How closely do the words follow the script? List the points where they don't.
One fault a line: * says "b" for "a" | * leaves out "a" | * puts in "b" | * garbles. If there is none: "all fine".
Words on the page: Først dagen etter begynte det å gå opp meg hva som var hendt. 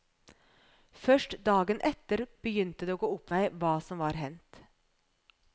all fine